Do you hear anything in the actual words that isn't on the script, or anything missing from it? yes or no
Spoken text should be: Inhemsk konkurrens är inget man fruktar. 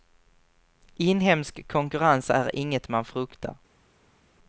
no